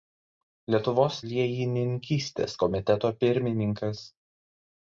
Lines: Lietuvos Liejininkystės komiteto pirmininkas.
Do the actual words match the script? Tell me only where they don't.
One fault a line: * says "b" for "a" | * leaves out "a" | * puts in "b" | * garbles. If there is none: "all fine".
all fine